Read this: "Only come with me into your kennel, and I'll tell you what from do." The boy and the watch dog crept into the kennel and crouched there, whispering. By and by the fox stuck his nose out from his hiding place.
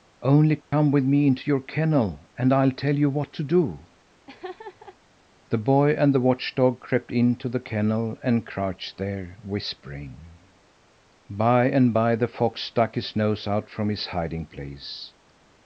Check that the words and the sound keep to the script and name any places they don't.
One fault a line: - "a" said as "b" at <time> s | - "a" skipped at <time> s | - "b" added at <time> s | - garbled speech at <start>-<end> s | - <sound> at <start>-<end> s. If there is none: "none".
- dropout at 0.6-0.7 s
- "from" said as "to" at 3.3 s
- laugh at 4.3-5.0 s